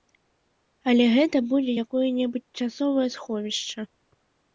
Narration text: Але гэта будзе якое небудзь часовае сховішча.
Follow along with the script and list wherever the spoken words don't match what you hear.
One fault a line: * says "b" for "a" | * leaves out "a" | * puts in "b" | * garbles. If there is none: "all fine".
all fine